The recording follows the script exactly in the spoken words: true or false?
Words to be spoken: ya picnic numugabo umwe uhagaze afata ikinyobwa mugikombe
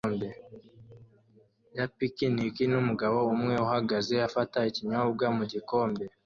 true